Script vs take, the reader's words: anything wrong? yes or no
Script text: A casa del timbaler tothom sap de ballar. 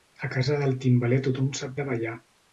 no